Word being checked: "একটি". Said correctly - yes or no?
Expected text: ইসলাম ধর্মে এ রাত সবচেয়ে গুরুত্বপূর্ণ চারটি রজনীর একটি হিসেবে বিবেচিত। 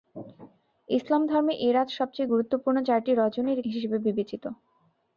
no